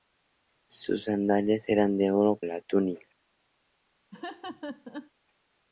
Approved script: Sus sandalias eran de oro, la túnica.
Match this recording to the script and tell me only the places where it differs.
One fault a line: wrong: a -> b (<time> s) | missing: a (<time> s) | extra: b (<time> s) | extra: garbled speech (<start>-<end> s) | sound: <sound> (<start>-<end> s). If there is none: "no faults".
sound: laugh (4.1-5.1 s)